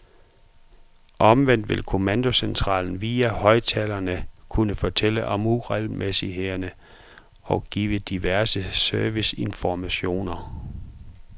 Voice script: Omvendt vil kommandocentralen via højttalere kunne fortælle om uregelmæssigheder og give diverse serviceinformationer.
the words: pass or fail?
pass